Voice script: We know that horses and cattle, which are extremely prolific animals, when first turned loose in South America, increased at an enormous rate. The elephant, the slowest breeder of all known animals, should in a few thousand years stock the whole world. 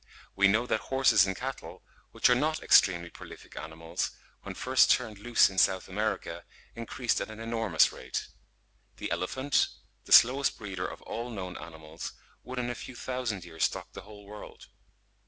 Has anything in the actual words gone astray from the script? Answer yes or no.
yes